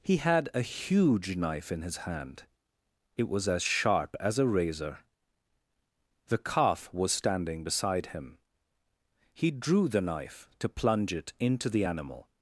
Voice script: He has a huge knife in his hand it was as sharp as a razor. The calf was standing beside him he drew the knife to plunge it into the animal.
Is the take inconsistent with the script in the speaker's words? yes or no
yes